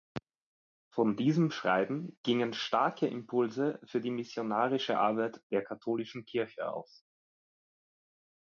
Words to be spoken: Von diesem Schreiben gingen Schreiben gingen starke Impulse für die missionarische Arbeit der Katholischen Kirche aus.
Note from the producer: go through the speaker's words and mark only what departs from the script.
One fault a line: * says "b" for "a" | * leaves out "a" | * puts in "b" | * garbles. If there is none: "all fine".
* leaves out "Schreiben gingen"